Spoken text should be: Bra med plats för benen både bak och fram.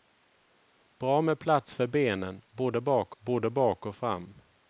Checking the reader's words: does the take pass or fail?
fail